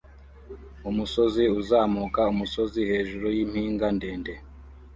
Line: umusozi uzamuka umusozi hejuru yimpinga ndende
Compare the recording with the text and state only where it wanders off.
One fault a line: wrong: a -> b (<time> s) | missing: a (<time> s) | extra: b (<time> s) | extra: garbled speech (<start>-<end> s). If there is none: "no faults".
no faults